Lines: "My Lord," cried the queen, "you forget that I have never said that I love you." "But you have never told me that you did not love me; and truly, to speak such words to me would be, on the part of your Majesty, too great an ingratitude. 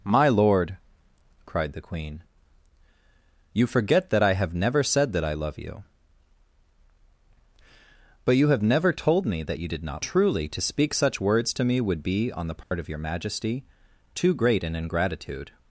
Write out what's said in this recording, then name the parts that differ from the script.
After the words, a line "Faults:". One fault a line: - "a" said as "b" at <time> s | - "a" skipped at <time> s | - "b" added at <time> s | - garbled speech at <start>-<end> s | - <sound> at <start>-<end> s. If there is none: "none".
"My Lord," cried the queen, "you forget that I have never said that I love you." "But you have never told me that you did not truly, to speak such words to me would be, on the part of your Majesty, too great an ingratitude.
Faults:
- "love me and" skipped at 10.0 s
- dropout at 12.6-12.7 s